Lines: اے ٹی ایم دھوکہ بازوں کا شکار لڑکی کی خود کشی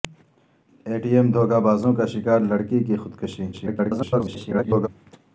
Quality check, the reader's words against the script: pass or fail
fail